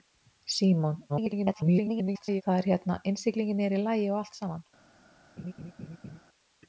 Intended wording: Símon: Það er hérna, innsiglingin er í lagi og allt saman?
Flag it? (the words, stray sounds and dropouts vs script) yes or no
yes